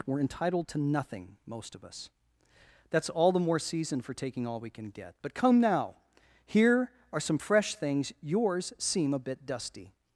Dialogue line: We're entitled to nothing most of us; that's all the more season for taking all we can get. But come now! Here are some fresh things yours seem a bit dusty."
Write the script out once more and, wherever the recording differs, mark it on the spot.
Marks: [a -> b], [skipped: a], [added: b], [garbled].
We're entitled to nothing most of us; that's all the more season for taking all we can get. But come now! Here are some fresh things yours seem a bit dusty."